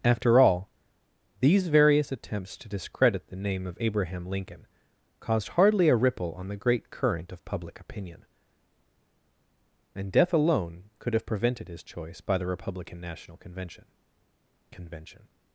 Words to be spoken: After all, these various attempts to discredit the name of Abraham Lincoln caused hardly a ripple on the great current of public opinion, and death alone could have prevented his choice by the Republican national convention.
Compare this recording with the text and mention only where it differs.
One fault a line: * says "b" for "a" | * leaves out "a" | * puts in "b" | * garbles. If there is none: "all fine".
* puts in "convention"